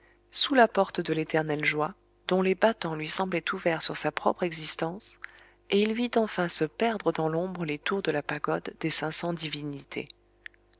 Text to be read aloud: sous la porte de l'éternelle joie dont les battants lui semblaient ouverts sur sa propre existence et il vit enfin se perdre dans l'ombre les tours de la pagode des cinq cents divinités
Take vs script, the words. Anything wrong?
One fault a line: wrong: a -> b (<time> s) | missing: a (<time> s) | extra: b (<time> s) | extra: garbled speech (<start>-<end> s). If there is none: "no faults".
no faults